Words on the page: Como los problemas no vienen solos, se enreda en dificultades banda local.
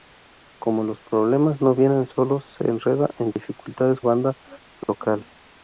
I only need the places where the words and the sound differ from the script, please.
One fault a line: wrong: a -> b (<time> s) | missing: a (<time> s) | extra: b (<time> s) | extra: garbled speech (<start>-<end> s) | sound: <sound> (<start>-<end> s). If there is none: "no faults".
sound: dropout (3.3-3.4 s)
sound: dropout (4.8-4.9 s)